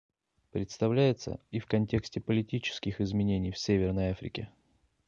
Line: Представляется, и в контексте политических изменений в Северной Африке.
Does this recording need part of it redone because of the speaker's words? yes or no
no